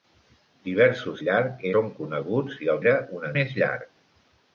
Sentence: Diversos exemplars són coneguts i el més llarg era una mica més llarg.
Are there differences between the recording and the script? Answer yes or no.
yes